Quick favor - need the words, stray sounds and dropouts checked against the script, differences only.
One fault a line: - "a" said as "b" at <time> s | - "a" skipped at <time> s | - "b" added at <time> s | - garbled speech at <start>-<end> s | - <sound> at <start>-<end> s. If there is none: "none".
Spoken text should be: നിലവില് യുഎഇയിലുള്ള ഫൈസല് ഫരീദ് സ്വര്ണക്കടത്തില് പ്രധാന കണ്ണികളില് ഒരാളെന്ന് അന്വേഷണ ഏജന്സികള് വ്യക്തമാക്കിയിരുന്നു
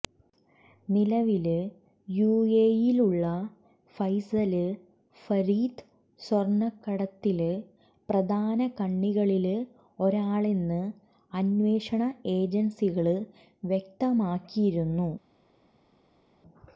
none